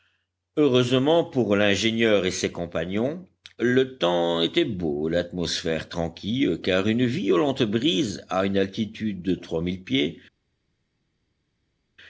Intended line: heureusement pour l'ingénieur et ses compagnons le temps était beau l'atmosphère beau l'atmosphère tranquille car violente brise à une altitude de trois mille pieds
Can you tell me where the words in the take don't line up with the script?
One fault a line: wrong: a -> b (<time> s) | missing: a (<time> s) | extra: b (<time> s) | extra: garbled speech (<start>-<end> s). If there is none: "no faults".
missing: beau l'atmosphère (5.9 s)
extra: une (6.9 s)